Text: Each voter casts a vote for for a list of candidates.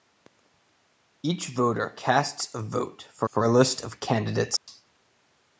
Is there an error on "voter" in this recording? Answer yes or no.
no